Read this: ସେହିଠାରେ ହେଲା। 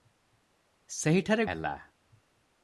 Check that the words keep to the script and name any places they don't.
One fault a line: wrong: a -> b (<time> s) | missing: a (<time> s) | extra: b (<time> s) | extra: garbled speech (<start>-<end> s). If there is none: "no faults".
no faults